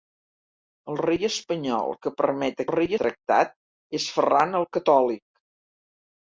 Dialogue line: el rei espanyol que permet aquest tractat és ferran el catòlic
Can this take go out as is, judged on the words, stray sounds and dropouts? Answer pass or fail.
fail